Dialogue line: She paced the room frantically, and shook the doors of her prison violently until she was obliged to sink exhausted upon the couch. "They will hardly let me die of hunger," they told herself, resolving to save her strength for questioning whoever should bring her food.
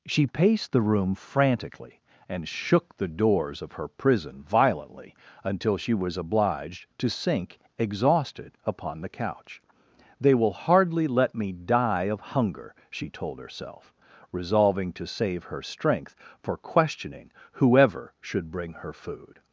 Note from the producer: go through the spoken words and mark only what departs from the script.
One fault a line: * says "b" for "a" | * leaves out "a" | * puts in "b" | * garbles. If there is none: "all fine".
* says "she" for "they"